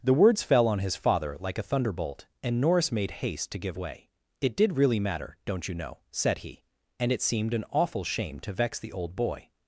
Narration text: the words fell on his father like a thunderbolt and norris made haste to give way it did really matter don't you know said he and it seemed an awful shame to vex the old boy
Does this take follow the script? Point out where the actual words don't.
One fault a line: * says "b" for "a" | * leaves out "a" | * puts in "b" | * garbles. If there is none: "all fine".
all fine